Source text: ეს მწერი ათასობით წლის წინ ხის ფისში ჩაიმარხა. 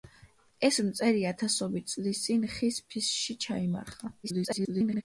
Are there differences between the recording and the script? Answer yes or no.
yes